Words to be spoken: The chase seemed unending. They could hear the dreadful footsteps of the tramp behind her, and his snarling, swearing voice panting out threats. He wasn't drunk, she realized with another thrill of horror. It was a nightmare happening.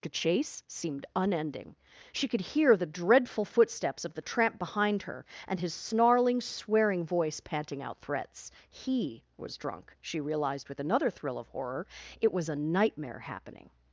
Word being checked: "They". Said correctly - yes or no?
no